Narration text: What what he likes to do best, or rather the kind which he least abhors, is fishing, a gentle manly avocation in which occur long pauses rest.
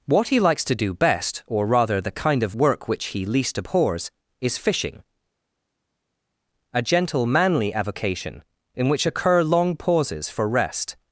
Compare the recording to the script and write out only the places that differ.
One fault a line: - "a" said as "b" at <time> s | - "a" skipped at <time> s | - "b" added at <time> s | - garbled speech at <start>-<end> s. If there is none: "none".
- "what" skipped at 0.3 s
- "of work" added at 2.4 s
- "for" added at 10.3 s